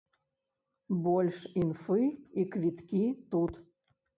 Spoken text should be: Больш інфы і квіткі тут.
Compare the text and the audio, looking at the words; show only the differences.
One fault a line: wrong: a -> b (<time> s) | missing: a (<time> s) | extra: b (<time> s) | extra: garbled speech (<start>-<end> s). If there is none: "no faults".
no faults